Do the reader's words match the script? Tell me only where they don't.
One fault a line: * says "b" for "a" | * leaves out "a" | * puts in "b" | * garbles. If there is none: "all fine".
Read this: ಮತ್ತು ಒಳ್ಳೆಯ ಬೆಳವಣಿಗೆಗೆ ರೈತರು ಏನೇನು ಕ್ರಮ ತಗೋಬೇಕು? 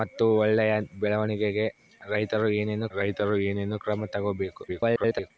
* puts in "ರೈತರು ಏನೇನು"
* garbles